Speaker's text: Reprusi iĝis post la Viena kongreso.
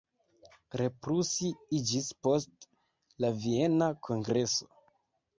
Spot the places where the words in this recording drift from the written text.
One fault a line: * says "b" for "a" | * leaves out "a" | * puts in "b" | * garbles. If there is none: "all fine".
all fine